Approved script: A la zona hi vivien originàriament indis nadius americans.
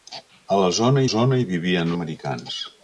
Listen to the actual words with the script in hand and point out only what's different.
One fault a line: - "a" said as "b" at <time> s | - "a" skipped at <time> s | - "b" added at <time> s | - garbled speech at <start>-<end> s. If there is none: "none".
- "zona" added at 1.1 s
- "originàriament indis nadius" skipped at 1.9 s